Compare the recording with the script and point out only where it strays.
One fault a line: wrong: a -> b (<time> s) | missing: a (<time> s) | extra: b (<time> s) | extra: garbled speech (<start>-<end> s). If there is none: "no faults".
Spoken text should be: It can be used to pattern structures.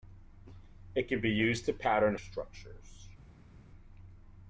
no faults